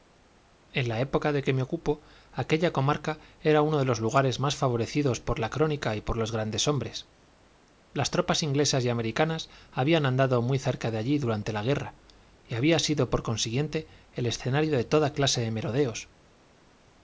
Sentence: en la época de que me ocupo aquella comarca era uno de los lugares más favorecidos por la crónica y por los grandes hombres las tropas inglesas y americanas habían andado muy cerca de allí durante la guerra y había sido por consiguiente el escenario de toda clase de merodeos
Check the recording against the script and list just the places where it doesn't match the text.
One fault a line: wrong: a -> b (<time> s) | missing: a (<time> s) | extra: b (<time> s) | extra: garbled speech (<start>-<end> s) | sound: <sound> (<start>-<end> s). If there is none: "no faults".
no faults